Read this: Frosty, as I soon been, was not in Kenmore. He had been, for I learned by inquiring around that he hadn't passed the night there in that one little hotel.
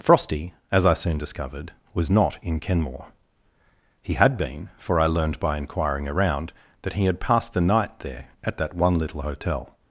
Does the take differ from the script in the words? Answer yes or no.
yes